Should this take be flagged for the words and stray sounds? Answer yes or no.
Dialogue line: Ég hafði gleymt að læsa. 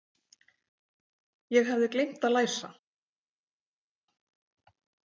no